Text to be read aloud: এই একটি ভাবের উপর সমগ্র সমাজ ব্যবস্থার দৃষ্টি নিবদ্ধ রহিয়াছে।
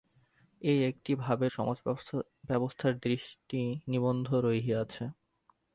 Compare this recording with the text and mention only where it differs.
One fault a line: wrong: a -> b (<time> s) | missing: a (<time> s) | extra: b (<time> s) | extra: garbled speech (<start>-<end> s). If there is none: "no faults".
missing: উপর সমগ্র (1.5 s)